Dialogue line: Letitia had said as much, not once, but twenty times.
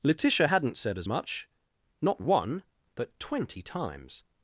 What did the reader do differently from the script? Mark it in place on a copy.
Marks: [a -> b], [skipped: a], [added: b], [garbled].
Letitia [had -> hadn't] said as much, not [once, -> one] but twenty times.